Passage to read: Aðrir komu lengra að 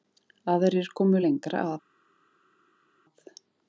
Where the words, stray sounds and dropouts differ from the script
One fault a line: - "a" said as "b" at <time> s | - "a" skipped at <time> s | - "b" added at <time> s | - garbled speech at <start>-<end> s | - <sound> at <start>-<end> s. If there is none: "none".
none